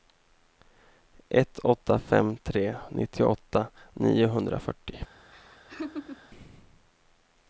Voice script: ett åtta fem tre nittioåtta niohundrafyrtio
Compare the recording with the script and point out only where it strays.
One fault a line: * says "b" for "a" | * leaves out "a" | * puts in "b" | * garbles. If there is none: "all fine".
all fine